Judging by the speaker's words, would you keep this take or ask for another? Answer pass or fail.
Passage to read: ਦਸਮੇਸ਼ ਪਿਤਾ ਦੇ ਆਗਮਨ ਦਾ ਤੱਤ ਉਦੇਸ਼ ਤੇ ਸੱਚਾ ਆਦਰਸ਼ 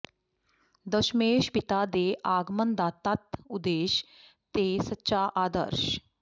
pass